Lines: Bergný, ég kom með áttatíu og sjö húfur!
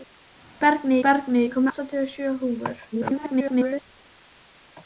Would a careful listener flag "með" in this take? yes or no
yes